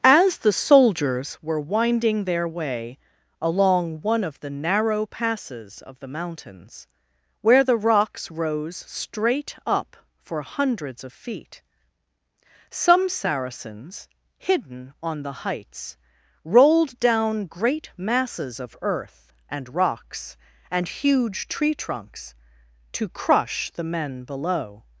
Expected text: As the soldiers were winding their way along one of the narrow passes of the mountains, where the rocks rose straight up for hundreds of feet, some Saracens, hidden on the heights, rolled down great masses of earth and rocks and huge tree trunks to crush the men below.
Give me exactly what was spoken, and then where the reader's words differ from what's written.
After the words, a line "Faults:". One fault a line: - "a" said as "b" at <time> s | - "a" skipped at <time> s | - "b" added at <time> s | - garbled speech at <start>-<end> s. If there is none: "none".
As the soldiers were winding their way along one of the narrow passes of the mountains, where the rocks rose straight up for hundreds of feet, some Saracens, hidden on the heights, rolled down great masses of earth and rocks and huge tree trunks to crush the men below.
Faults:
none